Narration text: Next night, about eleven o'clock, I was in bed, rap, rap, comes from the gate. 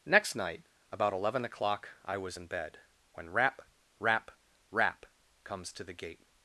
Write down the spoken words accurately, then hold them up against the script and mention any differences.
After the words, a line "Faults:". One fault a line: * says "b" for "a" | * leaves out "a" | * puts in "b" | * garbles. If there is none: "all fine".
Next night, about eleven o'clock, I was in bed, when rap, rap, rap, comes to the gate.
Faults:
* puts in "when"
* puts in "rap"
* says "to" for "from"